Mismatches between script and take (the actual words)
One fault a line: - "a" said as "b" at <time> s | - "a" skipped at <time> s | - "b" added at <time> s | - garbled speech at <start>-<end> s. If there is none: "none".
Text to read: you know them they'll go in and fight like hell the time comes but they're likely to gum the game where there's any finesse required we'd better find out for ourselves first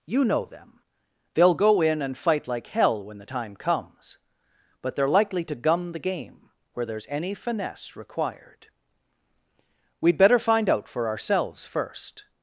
- "when" added at 3.0 s